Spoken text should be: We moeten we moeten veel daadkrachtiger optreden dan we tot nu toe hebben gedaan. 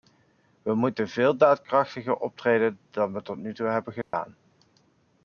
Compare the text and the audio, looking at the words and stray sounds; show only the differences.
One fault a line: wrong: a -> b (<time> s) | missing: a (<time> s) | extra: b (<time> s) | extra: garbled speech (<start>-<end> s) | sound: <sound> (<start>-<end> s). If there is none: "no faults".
missing: we moeten (1.1 s)
sound: dropout (4.0-4.1 s)